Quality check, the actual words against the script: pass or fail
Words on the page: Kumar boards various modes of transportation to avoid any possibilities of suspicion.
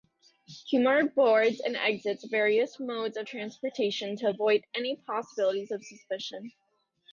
fail